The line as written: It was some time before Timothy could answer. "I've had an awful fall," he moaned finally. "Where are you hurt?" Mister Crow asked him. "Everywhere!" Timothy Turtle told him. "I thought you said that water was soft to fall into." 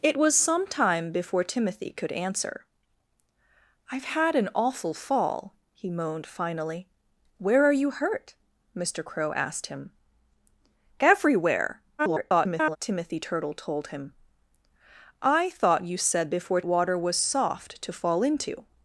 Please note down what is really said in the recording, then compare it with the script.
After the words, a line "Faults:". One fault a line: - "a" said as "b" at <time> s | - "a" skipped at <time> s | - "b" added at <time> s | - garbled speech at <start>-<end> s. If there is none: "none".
It was some time before Timothy could answer. "I've had an awful fall," he moaned finally. "Where are you hurt?" Mister Crow asked him. "Everywhere!" [garbled] Timothy Turtle told him. "I thought you said before water was soft to fall into."
Faults:
- garbled speech at 12.0-12.8 s
- "that" said as "before" at 16.3 s